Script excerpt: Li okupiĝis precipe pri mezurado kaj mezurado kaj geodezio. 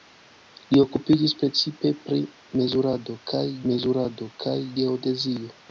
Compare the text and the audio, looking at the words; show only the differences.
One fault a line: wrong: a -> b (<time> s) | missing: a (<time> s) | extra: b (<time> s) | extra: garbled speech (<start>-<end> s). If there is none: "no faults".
no faults